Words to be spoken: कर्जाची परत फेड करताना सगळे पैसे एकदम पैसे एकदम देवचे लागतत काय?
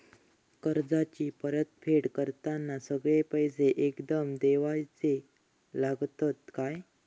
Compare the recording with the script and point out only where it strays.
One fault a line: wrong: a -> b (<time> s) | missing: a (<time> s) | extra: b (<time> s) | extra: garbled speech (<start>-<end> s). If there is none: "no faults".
missing: पैसे एकदम (4.3 s)